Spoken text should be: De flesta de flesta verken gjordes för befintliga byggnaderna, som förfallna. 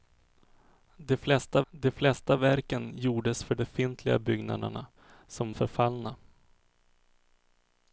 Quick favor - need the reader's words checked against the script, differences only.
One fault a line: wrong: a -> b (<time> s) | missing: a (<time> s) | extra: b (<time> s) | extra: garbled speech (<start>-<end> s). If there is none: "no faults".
no faults